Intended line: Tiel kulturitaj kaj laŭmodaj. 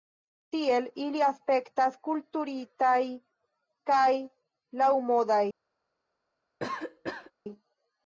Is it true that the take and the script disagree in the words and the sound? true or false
true